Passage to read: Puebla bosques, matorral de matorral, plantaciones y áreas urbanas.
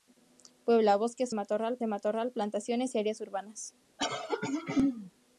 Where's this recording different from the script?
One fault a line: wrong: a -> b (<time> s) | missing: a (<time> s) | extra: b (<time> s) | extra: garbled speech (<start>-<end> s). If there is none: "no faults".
no faults